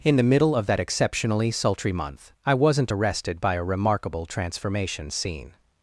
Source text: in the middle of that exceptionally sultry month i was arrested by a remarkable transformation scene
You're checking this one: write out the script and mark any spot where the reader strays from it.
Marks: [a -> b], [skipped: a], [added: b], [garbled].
in the middle of that exceptionally sultry month i [was -> wasn't] arrested by a remarkable transformation scene